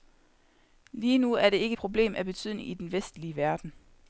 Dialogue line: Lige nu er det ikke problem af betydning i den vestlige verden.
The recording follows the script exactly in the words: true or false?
true